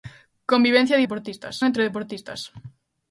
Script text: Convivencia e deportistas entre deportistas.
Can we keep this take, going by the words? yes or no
yes